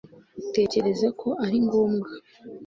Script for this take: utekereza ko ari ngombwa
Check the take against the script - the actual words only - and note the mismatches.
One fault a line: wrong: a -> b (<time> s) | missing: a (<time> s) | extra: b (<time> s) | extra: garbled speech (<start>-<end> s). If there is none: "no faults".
no faults